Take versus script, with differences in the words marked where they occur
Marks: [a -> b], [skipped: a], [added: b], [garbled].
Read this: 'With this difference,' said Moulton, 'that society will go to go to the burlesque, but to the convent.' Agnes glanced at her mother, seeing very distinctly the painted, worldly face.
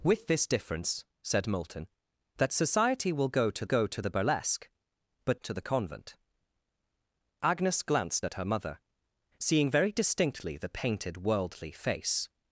'With this difference,' said Moulton, 'that society will go to go to the burlesque, but to the convent.' Agnes glanced at her mother, seeing very distinctly the painted, worldly face.